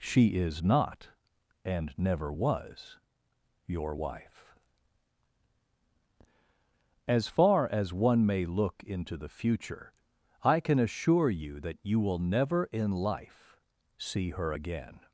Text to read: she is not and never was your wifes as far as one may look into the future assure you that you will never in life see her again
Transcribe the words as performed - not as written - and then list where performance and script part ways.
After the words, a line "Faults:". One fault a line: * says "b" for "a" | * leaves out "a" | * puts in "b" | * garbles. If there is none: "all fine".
she is not and never was your wife as far as one may look into the future i can assure you that you will never in life see her again
Faults:
* says "wife" for "wifes"
* puts in "i can"